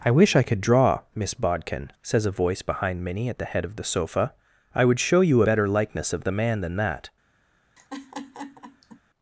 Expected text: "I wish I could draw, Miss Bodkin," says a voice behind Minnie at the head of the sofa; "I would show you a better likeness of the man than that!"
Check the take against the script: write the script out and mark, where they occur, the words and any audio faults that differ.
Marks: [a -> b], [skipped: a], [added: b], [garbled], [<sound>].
"I wish I could draw, Miss Bodkin," says a voice behind Minnie at the head of the sofa; "I would show you [skipped: a] better likeness of the man than that!" [laugh]